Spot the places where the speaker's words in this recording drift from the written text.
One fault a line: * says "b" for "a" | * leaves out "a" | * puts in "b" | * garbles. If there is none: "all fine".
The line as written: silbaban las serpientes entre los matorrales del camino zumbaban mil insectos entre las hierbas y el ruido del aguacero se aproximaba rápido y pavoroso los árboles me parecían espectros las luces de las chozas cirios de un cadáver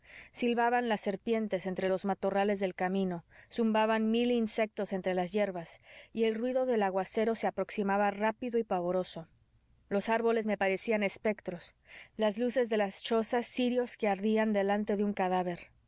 * puts in "que ardían delante"